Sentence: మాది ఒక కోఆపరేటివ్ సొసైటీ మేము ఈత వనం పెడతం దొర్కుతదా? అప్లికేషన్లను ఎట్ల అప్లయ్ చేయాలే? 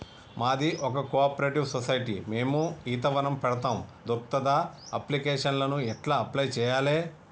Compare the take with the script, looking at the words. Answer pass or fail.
pass